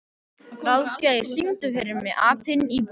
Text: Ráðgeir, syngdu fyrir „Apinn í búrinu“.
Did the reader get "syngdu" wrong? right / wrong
right